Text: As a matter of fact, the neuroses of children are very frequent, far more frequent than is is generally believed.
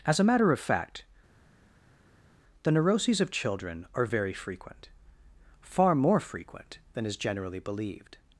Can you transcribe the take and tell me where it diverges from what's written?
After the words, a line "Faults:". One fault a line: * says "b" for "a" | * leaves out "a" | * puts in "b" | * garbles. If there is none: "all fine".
As a matter of fact, the neuroses of children are very frequent, far more frequent than is generally believed.
Faults:
* leaves out "is"